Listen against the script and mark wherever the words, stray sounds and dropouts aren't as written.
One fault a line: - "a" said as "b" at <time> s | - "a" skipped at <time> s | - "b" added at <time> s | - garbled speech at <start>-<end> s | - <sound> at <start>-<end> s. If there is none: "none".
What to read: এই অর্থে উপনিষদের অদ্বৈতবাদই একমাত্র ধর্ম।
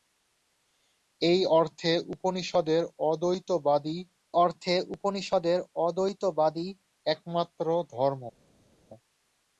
- "অর্থে উপনিষদের অদ্বৈতবাদই" added at 4.4 s